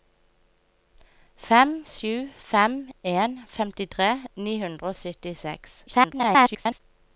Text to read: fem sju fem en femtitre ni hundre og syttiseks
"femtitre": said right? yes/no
yes